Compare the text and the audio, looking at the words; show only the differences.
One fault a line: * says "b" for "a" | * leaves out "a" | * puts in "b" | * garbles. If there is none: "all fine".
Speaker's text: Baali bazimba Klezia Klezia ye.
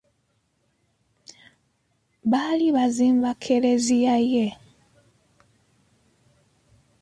* leaves out "Klezia"